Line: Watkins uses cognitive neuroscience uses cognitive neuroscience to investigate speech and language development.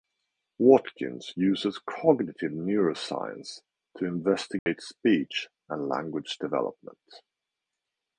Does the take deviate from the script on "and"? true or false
false